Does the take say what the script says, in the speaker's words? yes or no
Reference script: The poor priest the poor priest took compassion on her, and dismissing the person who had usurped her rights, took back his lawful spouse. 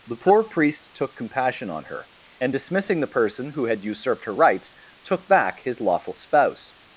no